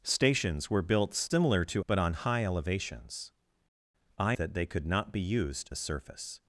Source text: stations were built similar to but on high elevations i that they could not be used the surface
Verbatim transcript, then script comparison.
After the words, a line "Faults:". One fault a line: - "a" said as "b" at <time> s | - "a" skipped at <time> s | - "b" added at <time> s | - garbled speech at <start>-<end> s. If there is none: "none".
stations were built similar to but on high elevations i that they could not be used the surface
Faults:
none